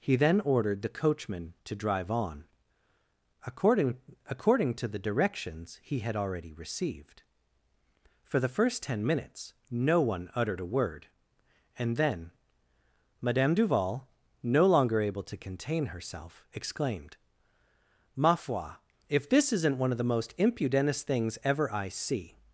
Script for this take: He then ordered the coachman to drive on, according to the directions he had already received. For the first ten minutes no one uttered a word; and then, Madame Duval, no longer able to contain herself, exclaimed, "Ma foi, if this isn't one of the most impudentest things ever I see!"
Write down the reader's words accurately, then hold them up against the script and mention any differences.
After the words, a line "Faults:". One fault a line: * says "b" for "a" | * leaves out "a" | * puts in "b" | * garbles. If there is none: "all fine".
He then ordered the coachman to drive on, according according to the directions he had already received. For the first ten minutes no one uttered a word; and then, Madame Duval, no longer able to contain herself, exclaimed, "Ma foi, if this isn't one of the most impudentest things ever I see!"
Faults:
* puts in "according"